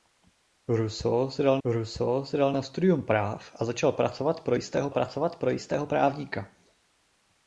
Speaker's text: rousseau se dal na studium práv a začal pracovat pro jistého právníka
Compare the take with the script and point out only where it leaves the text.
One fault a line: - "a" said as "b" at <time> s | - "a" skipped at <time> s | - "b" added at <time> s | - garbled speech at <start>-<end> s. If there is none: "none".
- "rousseau se dal" added at 1.6 s
- "pracovat pro jistého" added at 4.9 s